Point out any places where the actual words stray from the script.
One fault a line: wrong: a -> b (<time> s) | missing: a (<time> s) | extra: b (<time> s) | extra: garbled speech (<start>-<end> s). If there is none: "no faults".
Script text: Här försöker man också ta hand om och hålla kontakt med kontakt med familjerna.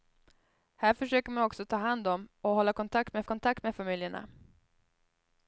no faults